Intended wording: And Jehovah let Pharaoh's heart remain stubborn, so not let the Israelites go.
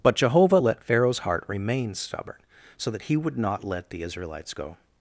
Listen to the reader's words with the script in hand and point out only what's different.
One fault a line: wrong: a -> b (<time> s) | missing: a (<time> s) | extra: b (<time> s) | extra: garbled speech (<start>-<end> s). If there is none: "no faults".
wrong: And -> But (0.0 s)
extra: that he would (2.9 s)